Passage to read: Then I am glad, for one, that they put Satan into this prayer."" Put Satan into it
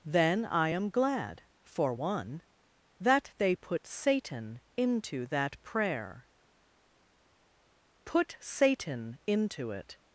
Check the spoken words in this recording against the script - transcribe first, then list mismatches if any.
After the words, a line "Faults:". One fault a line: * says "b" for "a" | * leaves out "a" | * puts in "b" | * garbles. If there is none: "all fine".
Then I am glad, for one, that they put Satan into that prayer."" Put Satan into it
Faults:
* says "that" for "this"